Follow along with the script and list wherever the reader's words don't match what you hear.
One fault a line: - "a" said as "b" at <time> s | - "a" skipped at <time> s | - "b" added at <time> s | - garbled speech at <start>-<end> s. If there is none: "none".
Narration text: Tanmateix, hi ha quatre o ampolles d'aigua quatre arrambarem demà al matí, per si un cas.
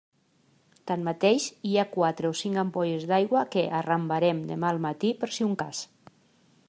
- "cinc" added at 2.4 s
- "quatre" said as "que" at 3.5 s